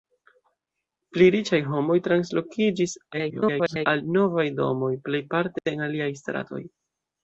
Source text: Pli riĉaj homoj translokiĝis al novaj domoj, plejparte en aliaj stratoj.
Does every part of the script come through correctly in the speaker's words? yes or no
no